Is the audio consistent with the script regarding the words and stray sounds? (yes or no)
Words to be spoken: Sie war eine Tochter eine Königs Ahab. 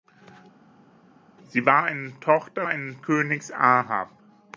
yes